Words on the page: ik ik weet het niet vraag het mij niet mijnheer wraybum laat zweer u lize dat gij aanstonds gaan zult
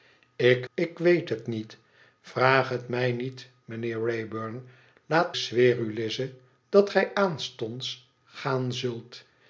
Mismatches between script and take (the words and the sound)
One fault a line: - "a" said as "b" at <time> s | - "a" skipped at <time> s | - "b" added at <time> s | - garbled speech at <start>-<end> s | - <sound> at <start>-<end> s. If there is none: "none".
none